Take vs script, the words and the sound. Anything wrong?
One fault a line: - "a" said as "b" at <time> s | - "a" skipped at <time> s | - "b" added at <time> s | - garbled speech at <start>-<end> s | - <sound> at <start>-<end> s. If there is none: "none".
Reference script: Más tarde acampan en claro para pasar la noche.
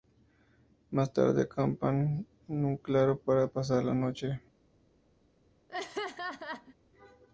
- "un" added at 2.6 s
- laugh at 5.7-6.8 s